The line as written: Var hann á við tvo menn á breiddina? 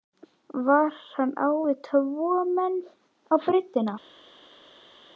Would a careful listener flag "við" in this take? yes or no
no